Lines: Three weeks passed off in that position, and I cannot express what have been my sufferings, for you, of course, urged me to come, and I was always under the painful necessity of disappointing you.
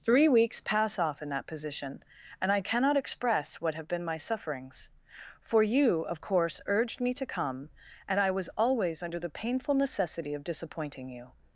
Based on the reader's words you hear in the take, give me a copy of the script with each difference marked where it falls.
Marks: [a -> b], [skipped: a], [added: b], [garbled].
Three weeks [passed -> pass] off in that position, and I cannot express what have been my sufferings, for you, of course, urged me to come, and I was always under the painful necessity of disappointing you.